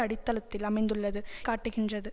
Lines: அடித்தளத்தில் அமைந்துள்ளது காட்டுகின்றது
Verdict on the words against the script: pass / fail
pass